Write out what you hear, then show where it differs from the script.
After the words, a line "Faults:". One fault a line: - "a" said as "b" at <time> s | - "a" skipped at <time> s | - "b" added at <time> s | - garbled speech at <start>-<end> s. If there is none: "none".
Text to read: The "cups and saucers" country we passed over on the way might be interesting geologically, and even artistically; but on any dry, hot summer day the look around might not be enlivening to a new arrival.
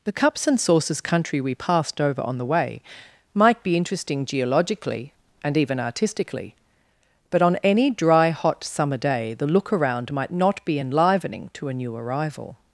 The "cups and saucers" country we passed over on the way might be interesting geologically, and even artistically; but on any dry, hot summer day the look around might not be enlivening to a new arrival.
Faults:
none